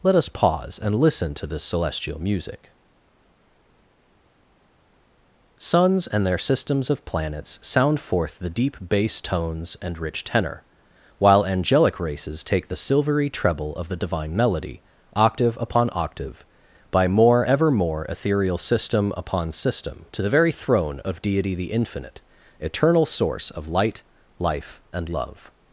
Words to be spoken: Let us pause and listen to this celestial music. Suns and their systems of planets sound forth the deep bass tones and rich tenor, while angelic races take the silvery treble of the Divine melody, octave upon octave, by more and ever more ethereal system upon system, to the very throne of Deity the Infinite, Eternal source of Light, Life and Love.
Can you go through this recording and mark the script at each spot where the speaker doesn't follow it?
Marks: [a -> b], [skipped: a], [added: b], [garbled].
Let us pause and listen to this celestial music. Suns and their systems of planets sound forth the deep bass tones and rich tenor, while angelic races take the silvery treble of the Divine melody, octave upon octave, by more [skipped: and] ever more ethereal system upon system, to the very throne of Deity the Infinite, Eternal source of Light, Life and Love.